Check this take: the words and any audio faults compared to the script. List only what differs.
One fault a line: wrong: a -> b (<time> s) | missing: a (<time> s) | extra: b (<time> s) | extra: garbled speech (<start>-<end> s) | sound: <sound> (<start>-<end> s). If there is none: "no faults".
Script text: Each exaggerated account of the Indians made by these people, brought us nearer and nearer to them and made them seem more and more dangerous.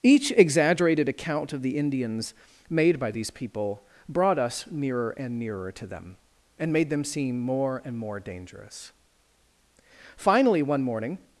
extra: Finally one morning (10.2 s)